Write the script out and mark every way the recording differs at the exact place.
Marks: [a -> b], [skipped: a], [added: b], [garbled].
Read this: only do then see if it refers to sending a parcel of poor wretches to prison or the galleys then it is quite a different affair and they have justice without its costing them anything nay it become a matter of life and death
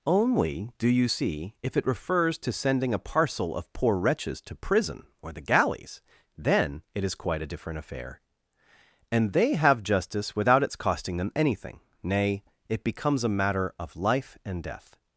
only do [then -> you] see if it refers to sending a parcel of poor wretches to prison or the galleys then it is quite a different affair and they have justice without its costing them anything nay it [become -> becomes] a matter of life and death